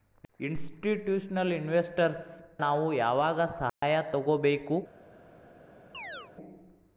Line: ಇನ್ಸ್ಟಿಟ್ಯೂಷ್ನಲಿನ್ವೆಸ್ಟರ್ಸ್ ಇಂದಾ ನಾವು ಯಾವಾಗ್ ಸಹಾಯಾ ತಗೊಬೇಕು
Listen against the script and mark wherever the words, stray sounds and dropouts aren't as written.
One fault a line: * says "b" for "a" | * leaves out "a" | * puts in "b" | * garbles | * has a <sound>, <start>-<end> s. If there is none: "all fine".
* leaves out "ಇಂದಾ"
* has a dropout, 3.7-3.8 s
* has a chirp, 5.9-6.3 s